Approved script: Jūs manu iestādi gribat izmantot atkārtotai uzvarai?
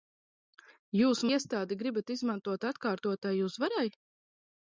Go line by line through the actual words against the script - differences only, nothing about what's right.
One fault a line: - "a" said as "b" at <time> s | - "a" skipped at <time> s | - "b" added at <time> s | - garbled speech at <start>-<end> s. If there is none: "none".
- "manu" skipped at 1.2 s